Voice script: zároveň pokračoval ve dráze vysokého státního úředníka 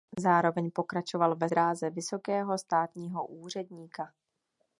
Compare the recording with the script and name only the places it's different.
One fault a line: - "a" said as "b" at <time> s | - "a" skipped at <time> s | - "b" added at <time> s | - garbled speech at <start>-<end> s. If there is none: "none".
none